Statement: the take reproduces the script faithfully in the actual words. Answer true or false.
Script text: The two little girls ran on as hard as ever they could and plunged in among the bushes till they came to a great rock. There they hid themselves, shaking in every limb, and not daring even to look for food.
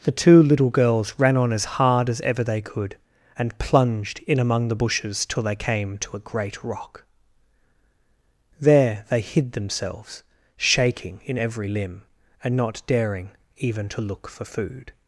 true